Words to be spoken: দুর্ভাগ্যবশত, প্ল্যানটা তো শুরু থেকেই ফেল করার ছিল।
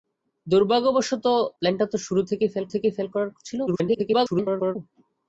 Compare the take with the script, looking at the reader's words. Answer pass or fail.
fail